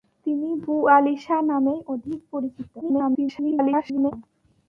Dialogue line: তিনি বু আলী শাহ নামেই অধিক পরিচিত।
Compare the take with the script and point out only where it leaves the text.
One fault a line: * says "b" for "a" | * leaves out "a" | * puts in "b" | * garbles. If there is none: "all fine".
* garbles